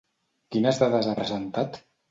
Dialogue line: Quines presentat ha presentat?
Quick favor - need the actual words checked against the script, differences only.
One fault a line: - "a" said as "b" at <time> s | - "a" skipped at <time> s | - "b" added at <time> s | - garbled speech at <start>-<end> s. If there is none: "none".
- "presentat" said as "dades" at 0.8 s